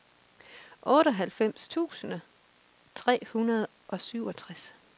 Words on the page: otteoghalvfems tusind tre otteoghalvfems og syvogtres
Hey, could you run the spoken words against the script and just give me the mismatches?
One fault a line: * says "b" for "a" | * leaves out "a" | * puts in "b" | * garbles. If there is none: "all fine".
* says "hundrede" for "otteoghalvfems"